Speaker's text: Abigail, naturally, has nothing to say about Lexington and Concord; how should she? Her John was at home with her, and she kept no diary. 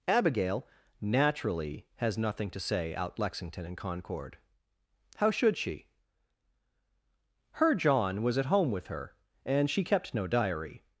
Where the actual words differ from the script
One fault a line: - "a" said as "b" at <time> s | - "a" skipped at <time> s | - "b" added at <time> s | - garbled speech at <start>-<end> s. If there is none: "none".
- "about" said as "out" at 3.0 s